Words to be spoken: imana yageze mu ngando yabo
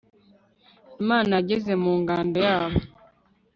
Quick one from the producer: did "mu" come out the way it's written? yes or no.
yes